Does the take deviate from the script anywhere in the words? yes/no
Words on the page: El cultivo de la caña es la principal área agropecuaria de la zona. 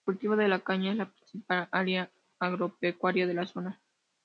no